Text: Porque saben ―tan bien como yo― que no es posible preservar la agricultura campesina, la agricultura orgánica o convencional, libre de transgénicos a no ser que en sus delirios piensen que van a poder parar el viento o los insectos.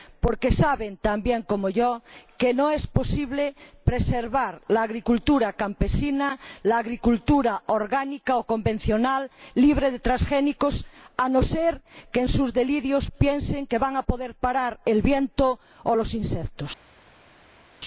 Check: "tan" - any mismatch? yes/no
no